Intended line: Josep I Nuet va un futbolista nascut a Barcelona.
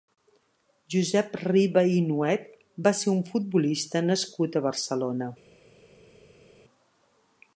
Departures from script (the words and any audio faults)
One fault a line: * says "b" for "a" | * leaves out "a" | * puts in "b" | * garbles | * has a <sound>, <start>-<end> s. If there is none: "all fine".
* puts in "Riba"
* puts in "ser"